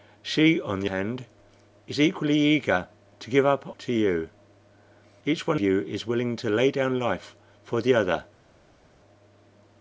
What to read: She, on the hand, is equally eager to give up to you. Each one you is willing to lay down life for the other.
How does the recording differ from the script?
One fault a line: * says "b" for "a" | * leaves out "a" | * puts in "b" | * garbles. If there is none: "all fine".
all fine